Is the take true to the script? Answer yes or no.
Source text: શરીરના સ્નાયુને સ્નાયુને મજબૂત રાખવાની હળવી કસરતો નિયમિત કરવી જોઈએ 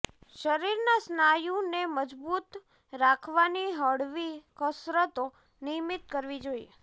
no